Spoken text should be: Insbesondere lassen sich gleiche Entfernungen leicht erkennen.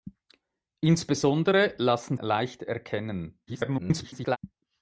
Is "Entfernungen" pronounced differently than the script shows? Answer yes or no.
yes